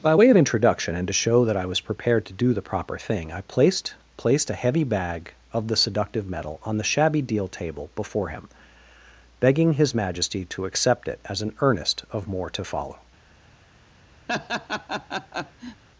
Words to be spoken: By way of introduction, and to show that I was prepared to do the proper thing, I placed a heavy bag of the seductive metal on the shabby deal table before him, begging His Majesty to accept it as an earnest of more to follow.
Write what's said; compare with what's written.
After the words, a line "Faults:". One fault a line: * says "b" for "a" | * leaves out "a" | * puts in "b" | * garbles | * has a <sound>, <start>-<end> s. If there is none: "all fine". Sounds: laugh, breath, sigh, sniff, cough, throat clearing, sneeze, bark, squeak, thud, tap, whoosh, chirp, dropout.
By way of introduction, and to show that I was prepared to do the proper thing, I placed placed a heavy bag of the seductive metal on the shabby deal table before him, begging His Majesty to accept it as an earnest of more to follow.
Faults:
* puts in "placed"
* has a laugh, 14.3-15.8 s